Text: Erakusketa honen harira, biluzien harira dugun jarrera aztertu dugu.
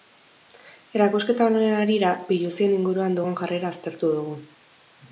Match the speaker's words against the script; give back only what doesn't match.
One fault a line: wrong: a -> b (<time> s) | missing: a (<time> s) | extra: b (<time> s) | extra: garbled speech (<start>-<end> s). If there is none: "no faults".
wrong: harira -> inguruan (2.8 s)